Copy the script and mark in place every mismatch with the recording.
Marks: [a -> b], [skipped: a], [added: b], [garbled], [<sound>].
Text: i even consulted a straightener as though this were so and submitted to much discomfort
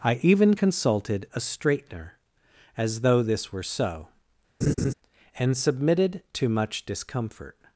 i even consulted a straightener as though this were so [laugh] and submitted to much discomfort